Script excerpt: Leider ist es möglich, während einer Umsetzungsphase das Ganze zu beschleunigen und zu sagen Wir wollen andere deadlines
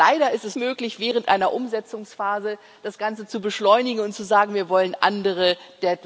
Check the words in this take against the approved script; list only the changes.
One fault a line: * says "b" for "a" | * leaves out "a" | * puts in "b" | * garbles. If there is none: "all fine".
all fine